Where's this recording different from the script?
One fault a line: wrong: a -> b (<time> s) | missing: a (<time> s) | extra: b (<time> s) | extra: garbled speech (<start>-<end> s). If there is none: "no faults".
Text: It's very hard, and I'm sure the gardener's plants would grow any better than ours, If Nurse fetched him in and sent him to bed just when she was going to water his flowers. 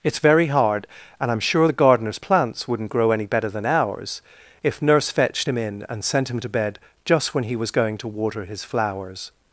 wrong: would -> wouldn't (2.7 s)
wrong: she -> he (7.4 s)